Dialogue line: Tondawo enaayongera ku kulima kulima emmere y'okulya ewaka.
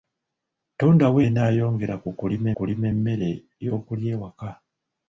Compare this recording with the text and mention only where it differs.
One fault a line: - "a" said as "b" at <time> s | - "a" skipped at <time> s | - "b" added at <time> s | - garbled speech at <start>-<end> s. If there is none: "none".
none